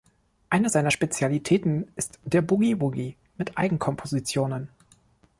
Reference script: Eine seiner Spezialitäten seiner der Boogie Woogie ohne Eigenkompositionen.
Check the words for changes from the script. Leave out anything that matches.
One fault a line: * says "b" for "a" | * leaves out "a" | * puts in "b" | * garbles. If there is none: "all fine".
* says "ist" for "seiner"
* says "mit" for "ohne"